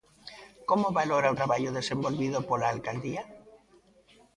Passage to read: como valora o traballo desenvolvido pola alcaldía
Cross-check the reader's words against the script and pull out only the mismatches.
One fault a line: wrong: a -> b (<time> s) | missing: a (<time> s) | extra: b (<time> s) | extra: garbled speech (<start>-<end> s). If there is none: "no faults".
no faults